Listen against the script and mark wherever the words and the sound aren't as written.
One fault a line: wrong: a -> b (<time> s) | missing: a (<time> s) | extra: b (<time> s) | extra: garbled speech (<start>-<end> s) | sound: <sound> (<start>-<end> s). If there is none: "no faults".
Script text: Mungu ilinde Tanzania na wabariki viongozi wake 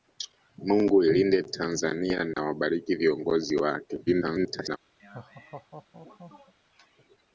sound: dropout (2.3-2.4 s)
extra: garbled speech (4.1-4.8 s)
sound: laugh (5.0-6.5 s)